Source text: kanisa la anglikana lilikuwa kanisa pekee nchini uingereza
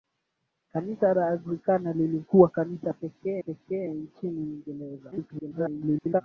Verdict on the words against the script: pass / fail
fail